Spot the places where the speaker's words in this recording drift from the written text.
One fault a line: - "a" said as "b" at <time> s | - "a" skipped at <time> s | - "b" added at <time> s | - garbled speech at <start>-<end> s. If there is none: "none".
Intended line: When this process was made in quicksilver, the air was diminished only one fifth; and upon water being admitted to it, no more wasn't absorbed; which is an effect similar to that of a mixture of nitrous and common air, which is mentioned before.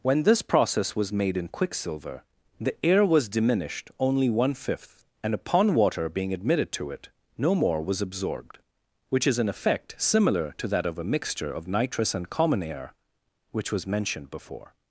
- "wasn't" said as "was" at 7.8 s
- "is" said as "was" at 13.7 s